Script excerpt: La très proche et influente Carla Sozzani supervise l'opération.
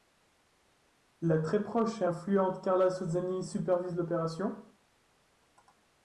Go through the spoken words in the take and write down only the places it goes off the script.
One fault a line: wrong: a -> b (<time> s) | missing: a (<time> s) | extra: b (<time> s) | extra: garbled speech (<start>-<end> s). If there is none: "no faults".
no faults